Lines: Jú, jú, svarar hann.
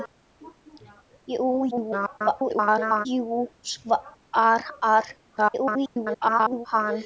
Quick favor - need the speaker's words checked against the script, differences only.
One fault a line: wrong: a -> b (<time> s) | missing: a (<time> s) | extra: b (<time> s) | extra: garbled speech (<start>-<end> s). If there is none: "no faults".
extra: garbled speech (1.7-3.1 s)
extra: garbled speech (5.4-6.7 s)